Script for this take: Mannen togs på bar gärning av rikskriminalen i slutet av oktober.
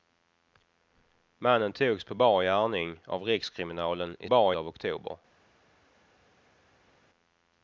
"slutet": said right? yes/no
no